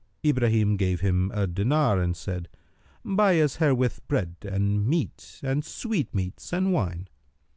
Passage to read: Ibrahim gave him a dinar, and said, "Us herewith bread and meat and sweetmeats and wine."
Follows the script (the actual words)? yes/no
no